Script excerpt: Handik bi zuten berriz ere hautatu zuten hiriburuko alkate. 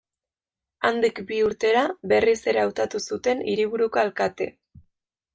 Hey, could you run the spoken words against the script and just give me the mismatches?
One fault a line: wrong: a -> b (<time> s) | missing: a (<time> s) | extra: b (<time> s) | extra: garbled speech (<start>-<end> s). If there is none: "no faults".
wrong: zuten -> urtera (1.5 s)